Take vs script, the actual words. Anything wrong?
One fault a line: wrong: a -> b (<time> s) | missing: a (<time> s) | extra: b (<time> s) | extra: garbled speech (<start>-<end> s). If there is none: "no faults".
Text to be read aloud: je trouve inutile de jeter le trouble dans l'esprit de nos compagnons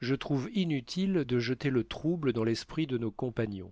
no faults